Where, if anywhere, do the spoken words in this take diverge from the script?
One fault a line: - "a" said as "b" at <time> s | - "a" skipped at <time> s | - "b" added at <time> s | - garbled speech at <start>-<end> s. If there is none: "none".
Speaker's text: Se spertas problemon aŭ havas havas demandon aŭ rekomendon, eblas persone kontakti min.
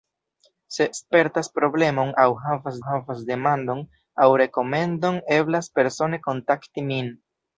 none